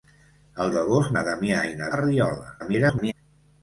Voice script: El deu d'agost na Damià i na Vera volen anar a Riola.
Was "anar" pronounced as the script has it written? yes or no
no